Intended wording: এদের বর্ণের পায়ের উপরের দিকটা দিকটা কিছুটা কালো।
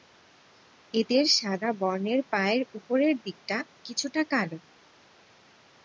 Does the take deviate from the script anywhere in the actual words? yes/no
yes